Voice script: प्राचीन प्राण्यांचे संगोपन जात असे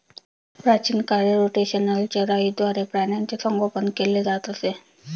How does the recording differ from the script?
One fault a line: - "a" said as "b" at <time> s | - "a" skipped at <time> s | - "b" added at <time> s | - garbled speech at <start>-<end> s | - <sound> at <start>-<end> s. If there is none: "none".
- "काळी रोटेशनल चराईद्वारे" added at 1.1 s
- "केले" added at 4.0 s